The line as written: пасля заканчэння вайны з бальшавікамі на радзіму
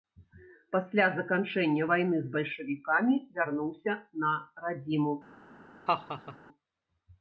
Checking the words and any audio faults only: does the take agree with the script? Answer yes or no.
no